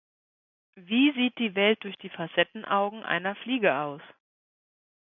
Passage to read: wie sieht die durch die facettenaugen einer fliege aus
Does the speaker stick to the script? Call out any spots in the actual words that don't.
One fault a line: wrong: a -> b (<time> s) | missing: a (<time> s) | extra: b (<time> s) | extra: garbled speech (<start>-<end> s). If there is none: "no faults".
extra: welt (1.5 s)